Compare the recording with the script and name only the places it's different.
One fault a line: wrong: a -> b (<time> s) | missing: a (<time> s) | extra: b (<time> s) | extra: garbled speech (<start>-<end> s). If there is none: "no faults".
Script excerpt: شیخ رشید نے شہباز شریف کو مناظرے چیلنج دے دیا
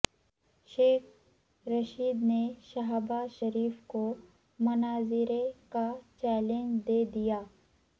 extra: کا (5.7 s)